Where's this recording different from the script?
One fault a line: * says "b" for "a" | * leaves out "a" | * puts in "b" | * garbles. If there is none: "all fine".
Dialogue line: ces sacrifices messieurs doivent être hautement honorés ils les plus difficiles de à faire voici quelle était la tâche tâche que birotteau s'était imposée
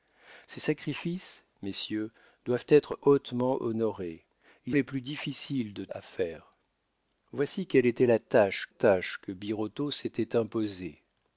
all fine